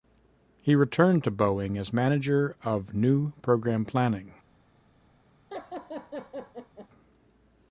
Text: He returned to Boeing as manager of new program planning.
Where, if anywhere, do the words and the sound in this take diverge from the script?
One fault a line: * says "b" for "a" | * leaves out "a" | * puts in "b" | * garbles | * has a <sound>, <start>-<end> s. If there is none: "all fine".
* has a laugh, 5.5-6.9 s